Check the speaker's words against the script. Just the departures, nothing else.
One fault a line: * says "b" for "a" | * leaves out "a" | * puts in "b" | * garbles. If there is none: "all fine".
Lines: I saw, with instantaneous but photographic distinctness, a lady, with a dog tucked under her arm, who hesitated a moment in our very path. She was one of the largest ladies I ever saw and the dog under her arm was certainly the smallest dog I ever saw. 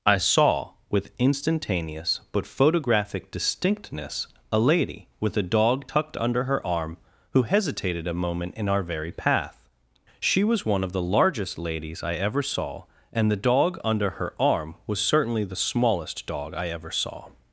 all fine